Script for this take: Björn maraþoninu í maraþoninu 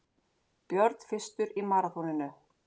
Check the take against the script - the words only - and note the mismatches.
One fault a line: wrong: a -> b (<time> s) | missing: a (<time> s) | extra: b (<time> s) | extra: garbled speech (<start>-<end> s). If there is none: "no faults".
wrong: maraþoninu -> fyrstur (1.1 s)